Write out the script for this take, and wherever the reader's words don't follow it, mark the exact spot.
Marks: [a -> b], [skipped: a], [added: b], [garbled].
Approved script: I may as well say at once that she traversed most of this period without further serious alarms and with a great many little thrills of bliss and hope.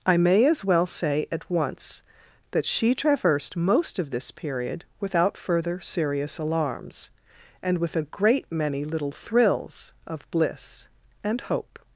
I may as well say at once that she traversed most of this period without further serious alarms and with a great many little thrills of bliss and hope.